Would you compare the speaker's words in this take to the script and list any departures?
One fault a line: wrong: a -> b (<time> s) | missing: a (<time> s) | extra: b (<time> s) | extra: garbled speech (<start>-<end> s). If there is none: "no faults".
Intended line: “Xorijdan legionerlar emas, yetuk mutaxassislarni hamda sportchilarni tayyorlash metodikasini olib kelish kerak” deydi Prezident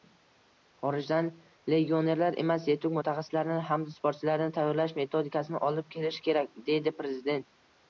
no faults